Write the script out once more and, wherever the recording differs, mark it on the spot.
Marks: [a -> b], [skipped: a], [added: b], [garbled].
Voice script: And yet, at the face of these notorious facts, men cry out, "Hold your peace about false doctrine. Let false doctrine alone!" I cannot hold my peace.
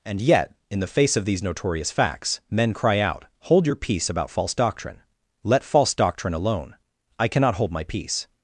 And yet, [at -> in] the face of these notorious facts, men cry out, "Hold your peace about false doctrine. Let false doctrine alone!" I cannot hold my peace.